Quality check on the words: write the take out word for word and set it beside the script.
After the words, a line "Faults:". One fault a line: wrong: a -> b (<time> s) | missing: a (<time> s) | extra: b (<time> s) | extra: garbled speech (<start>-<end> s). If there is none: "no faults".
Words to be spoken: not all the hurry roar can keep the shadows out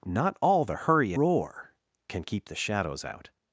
not all the hurry roar can keep the shadows out
Faults:
no faults